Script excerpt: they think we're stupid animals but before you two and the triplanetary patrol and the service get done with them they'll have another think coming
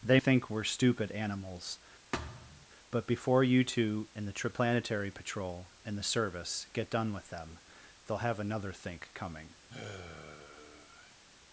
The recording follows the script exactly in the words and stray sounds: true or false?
false